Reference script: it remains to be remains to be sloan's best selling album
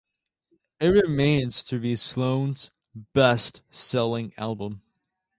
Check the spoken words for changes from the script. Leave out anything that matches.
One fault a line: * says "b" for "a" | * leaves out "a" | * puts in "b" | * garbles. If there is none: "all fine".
* leaves out "remains to be"